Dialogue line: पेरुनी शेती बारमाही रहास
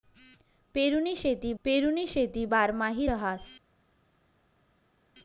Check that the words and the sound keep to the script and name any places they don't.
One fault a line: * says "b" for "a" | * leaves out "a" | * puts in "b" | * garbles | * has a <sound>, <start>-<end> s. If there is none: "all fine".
* puts in "पेरुनी शेती"